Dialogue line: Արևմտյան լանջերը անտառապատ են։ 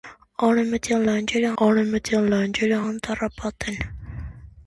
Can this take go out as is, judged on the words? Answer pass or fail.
fail